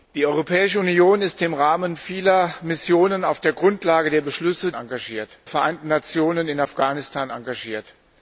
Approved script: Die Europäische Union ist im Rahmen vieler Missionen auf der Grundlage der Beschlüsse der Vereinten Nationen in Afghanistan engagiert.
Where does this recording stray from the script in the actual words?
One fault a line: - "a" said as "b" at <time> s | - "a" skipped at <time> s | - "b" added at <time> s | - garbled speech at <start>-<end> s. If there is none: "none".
- "der" said as "engagiert" at 4.8 s